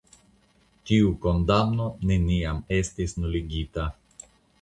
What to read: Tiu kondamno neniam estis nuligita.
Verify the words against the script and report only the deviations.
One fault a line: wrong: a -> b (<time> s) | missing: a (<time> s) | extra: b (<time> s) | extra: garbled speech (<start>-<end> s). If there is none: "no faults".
no faults